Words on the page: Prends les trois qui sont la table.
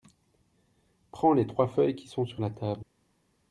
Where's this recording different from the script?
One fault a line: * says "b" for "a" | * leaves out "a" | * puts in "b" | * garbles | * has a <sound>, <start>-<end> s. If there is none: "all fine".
* puts in "feuilles"
* puts in "sur"